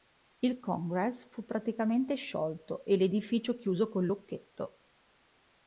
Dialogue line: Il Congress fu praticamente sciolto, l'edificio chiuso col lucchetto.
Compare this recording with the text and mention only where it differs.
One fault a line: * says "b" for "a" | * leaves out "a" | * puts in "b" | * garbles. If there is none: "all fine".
* puts in "e"